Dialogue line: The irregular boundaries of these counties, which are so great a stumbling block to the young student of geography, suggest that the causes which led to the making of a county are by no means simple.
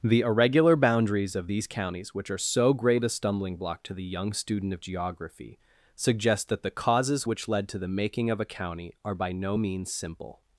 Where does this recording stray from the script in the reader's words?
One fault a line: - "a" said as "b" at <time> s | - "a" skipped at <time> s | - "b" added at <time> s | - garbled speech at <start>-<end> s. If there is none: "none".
none